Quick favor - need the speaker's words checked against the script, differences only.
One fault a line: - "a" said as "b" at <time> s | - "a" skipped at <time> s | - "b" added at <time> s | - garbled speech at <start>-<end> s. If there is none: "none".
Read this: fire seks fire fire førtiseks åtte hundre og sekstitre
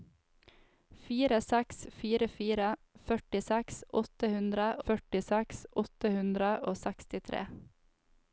- "førtiseks åtte hundre" added at 4.9 s